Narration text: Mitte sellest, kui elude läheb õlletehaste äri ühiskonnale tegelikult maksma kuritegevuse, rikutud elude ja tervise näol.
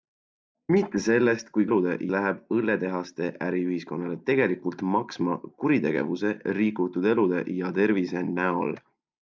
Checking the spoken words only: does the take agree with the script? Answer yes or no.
yes